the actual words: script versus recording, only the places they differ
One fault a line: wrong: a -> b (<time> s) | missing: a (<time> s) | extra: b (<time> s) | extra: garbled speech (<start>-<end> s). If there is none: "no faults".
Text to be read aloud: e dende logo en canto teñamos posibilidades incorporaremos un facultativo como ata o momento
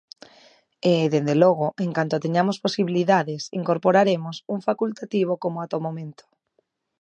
no faults